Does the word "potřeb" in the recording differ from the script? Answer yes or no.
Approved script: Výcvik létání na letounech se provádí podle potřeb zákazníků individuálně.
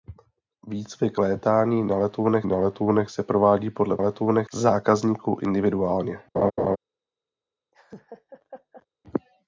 yes